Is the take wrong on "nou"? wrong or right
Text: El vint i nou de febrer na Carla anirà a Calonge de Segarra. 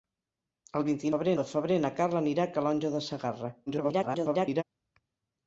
wrong